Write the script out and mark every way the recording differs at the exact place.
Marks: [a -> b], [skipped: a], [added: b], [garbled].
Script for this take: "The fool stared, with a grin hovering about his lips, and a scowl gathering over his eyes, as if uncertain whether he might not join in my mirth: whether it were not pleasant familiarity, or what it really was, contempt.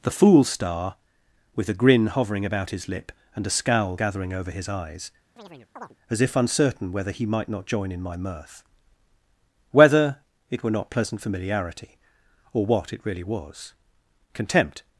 "The fool [stared, -> star] with a grin hovering about his [lips, -> lip] and a scowl gathering over his eyes, as if uncertain whether he might not join in my mirth: whether it were not pleasant familiarity, or what it really was, contempt.